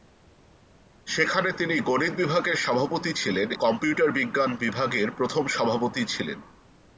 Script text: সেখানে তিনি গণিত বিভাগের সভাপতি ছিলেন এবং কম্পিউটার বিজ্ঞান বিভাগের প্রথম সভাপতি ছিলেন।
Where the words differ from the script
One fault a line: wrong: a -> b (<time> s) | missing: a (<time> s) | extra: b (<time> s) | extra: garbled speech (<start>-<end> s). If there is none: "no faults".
missing: এবং (3.5 s)